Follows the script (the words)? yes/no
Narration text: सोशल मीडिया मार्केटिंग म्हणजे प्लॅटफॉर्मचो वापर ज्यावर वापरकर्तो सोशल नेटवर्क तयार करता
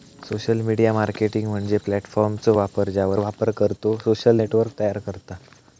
yes